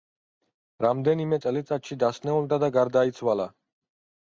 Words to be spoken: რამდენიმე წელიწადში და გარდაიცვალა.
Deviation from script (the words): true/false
true